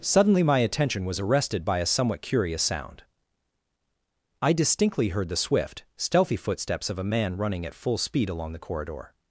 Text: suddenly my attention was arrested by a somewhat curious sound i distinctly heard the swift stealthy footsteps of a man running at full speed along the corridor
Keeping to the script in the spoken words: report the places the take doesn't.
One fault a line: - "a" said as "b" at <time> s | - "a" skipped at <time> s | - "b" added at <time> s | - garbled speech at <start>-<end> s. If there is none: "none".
none